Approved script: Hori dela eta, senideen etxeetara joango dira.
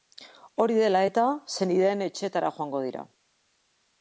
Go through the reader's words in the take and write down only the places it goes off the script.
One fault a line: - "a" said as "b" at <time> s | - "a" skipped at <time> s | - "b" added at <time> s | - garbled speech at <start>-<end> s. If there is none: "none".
none